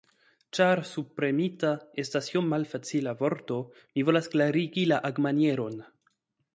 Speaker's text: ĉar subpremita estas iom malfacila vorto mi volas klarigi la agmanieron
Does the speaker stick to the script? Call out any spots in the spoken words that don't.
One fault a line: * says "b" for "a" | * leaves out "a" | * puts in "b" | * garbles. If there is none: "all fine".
all fine